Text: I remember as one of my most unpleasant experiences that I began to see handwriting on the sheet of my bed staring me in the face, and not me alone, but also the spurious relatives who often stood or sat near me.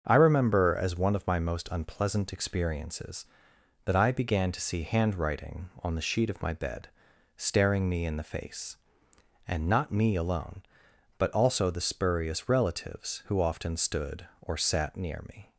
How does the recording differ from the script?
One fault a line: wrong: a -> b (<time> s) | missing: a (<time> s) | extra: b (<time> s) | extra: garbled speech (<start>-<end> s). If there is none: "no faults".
no faults